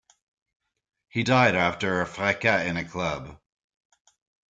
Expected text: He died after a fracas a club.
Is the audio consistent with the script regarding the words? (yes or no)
no